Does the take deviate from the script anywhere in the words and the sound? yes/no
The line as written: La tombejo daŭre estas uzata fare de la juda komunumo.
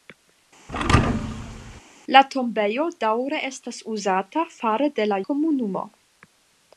yes